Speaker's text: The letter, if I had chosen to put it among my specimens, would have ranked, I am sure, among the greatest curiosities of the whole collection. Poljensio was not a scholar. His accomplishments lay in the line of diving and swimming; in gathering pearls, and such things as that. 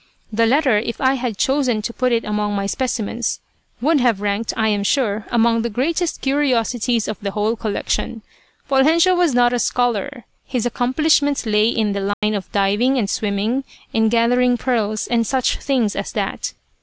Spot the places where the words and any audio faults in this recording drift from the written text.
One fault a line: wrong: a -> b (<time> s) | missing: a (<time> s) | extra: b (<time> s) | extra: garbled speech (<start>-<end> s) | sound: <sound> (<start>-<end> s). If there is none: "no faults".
sound: dropout (12.1-12.2 s)